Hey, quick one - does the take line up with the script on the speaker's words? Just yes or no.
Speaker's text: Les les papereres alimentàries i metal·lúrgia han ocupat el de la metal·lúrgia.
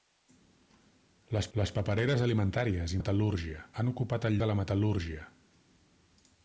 yes